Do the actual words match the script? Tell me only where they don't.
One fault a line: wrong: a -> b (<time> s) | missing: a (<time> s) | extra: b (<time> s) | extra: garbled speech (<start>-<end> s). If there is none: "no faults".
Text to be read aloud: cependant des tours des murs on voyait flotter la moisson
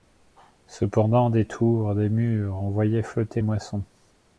missing: la (3.4 s)